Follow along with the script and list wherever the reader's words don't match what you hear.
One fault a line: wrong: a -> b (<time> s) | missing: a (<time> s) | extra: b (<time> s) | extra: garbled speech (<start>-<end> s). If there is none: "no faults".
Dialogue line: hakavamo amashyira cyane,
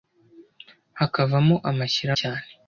no faults